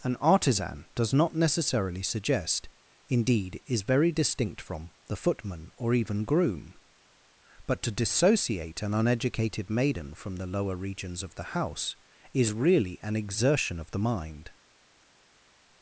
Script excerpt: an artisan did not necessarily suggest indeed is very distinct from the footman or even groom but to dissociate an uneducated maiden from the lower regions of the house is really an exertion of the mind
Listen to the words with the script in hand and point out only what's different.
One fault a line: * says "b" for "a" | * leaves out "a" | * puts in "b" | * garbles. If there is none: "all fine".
* says "does" for "did"